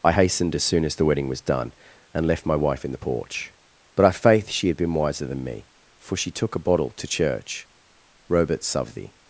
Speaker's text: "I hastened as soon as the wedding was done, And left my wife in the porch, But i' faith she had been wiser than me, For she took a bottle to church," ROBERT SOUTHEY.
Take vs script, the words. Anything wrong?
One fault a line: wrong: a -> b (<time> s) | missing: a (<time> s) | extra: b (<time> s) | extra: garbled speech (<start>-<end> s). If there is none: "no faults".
no faults